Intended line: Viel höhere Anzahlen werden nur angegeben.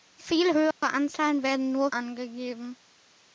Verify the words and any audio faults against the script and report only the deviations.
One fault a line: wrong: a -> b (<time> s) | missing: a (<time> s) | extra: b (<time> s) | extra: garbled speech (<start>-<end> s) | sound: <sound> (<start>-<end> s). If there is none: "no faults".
sound: dropout (0.7-0.8 s)